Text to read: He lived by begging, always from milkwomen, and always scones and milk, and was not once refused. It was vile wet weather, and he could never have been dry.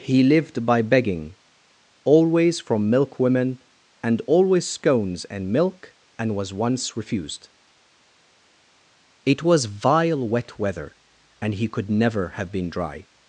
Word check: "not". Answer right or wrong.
wrong